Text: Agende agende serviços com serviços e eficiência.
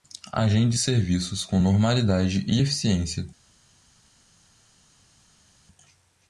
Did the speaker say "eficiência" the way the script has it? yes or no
yes